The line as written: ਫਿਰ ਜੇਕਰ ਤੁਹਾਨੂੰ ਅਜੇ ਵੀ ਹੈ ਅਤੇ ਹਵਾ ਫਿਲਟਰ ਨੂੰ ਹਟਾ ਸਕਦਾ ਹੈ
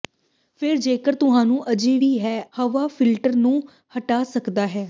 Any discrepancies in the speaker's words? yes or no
yes